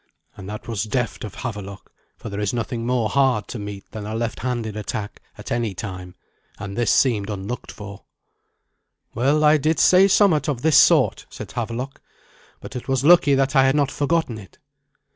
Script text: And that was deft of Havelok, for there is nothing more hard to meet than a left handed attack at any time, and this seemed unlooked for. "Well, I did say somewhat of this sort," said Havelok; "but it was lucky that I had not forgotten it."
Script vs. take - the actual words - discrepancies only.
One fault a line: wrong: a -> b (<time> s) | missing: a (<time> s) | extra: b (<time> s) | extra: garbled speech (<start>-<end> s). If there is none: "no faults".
no faults